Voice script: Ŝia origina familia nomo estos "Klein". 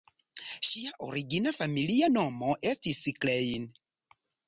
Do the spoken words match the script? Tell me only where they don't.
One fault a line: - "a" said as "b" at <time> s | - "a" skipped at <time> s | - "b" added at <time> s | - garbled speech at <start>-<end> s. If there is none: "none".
- "estos" said as "estis" at 2.7 s